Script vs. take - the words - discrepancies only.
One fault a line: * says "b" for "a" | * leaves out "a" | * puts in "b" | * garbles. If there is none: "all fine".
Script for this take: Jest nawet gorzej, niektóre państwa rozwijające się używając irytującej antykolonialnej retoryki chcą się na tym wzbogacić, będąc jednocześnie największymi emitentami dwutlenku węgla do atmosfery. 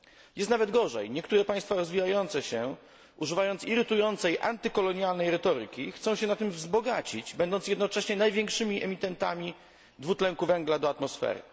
all fine